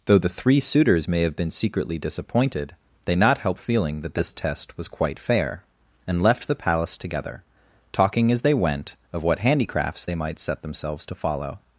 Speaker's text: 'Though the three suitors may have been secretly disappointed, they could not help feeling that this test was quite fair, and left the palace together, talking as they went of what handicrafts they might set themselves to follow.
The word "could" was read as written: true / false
false